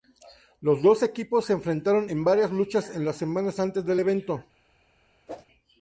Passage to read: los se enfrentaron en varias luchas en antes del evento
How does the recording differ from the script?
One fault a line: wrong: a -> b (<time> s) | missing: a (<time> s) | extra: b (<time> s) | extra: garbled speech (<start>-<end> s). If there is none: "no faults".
extra: dos equipos (0.8 s)
extra: las semanas (3.0 s)